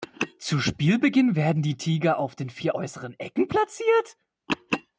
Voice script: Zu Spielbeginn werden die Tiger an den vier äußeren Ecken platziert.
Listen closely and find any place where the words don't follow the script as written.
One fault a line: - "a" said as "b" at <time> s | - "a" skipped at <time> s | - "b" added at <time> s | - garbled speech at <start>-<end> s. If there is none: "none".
- "an" said as "auf" at 2.2 s